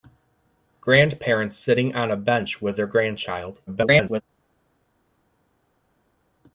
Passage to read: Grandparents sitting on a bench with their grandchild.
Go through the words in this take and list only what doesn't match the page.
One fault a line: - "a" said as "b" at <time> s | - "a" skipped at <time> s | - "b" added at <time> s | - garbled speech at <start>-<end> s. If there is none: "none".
- garbled speech at 3.7-4.2 s